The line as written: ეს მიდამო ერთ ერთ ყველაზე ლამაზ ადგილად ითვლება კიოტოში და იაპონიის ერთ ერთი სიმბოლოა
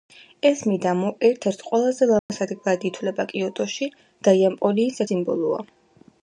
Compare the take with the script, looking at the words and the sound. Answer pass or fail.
fail